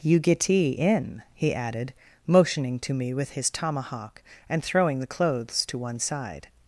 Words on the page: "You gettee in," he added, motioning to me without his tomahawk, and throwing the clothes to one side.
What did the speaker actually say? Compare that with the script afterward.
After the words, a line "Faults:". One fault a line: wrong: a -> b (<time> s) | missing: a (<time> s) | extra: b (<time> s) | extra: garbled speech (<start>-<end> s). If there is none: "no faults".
"You gettee in," he added, motioning to me with his tomahawk, and throwing the clothes to one side.
Faults:
wrong: without -> with (3.1 s)